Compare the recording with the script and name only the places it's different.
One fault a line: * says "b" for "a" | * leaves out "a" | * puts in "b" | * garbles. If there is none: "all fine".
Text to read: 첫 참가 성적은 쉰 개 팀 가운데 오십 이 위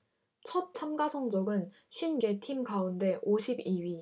all fine